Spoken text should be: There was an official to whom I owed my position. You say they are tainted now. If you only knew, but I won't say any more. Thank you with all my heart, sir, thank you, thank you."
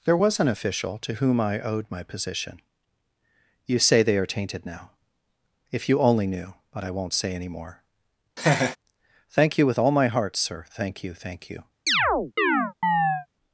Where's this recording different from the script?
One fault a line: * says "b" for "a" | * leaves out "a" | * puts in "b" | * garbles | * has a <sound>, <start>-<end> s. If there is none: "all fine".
* has a laugh, 8.4-8.8 s
* has a chirp, 11.9-13.3 s